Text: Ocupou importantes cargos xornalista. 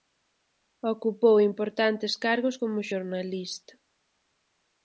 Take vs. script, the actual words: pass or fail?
fail